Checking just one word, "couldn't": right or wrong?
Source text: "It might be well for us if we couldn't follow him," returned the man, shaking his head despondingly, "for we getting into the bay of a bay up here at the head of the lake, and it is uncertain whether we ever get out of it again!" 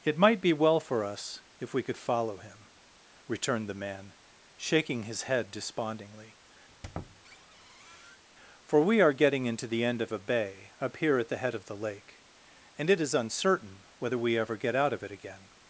wrong